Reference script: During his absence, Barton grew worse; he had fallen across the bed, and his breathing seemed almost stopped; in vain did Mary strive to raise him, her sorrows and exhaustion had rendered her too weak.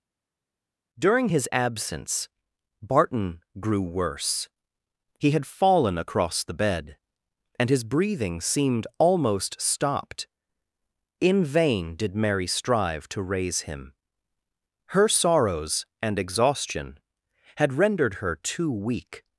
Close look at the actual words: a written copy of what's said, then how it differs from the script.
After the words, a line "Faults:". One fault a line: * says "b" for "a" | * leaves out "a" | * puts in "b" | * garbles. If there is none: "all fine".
During his absence, Barton grew worse; he had fallen across the bed, and his breathing seemed almost stopped; in vain did Mary strive to raise him, her sorrows and exhaustion had rendered her too weak.
Faults:
all fine